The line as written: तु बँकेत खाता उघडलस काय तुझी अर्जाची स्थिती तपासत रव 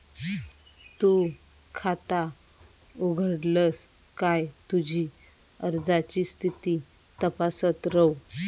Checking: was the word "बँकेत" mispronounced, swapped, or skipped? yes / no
yes